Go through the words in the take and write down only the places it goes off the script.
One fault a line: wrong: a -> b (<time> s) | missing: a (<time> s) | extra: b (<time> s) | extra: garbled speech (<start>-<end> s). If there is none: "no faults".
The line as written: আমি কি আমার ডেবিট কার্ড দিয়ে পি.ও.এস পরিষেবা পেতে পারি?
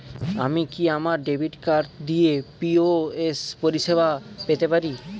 no faults